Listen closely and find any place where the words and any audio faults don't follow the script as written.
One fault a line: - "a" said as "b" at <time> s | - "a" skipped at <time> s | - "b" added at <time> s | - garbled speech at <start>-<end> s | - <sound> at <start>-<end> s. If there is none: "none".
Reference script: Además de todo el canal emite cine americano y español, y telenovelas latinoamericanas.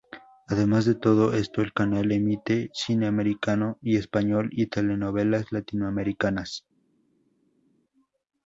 - "esto" added at 1.3 s